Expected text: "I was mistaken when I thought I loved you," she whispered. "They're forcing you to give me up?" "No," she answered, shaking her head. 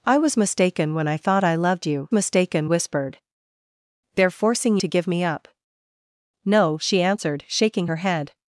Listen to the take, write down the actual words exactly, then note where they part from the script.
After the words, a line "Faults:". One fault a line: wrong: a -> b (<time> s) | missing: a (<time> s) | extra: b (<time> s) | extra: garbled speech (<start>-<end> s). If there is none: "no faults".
"I was mistaken when I thought I loved you," mistaken whispered. "They're forcing to give me up?" "No," she answered, shaking her head.
Faults:
wrong: she -> mistaken (2.1 s)
missing: you (4.8 s)